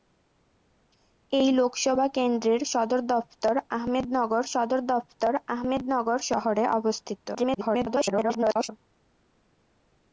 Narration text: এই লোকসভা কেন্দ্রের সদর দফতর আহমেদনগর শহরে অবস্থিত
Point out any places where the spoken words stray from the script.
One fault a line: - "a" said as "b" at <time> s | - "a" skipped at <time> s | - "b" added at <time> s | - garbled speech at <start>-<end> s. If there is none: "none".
- "সদর দফতর আহমেদনগর" added at 4.5 s
- garbled speech at 7.3-8.7 s